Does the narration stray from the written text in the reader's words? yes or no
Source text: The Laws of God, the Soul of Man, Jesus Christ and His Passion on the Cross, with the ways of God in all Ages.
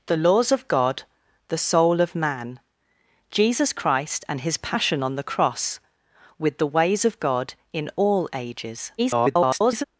yes